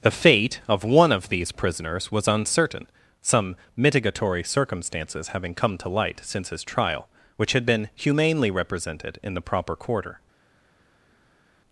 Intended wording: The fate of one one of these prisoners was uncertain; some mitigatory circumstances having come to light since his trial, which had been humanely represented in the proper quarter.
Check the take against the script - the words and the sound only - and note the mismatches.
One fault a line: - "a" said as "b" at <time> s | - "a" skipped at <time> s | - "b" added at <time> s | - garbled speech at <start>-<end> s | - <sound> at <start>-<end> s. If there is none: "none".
- "one" skipped at 1.1 s